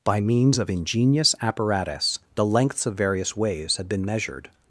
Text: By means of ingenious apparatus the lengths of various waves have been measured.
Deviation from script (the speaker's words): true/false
true